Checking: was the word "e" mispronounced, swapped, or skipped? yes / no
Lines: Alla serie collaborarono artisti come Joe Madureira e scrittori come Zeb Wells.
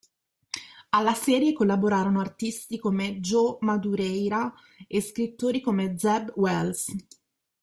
no